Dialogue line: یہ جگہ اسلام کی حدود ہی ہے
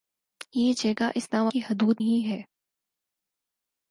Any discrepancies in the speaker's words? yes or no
no